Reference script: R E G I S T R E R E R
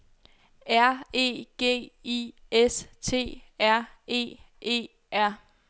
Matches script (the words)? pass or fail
fail